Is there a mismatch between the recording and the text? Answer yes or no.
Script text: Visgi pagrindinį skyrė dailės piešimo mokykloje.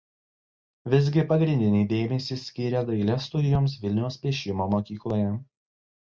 yes